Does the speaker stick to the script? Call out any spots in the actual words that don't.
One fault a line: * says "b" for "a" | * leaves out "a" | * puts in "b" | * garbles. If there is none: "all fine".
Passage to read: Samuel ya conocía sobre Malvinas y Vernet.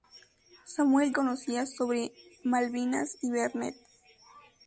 * leaves out "ya"